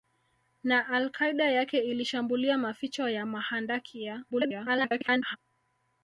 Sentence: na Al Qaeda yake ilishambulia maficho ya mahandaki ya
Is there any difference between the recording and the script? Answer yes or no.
yes